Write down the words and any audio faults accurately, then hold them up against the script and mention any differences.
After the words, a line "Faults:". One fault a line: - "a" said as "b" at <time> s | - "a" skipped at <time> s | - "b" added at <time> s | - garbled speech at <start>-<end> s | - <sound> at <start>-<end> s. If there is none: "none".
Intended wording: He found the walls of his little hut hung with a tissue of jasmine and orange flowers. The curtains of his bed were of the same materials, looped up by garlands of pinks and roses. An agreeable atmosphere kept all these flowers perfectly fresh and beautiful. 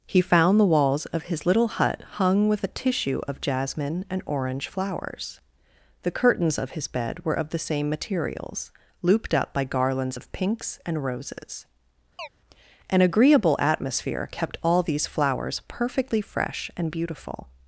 He found the walls of his little hut hung with a tissue of jasmine and orange flowers. The curtains of his bed were of the same materials, looped up by garlands of pinks and roses. An agreeable atmosphere kept all these flowers perfectly fresh and beautiful.
Faults:
- chirp at 12.2-12.3 s